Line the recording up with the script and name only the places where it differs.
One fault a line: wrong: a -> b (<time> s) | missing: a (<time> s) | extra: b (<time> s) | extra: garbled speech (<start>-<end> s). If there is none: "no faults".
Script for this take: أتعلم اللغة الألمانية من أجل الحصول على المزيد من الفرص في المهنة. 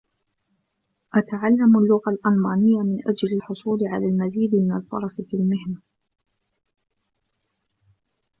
no faults